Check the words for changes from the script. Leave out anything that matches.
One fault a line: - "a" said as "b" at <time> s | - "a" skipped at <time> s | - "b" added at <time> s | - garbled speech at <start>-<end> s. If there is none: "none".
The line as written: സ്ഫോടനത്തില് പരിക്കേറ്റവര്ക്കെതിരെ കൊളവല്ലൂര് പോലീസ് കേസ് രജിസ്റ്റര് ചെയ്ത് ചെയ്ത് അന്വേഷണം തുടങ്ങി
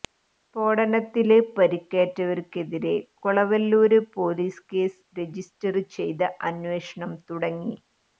- "ചെയ്ത്" skipped at 6.3 s